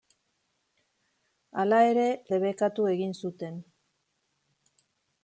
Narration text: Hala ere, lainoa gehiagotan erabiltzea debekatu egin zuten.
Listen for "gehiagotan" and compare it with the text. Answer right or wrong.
wrong